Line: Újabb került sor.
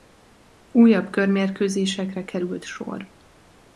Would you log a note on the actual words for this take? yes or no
yes